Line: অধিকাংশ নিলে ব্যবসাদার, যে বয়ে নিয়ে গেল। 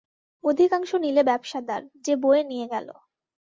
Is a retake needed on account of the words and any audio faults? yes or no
no